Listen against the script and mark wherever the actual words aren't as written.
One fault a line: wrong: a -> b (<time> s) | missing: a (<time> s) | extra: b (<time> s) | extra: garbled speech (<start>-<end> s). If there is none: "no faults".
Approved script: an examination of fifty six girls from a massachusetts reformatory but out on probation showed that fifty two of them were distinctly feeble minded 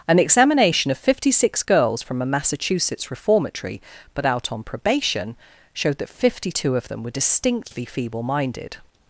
no faults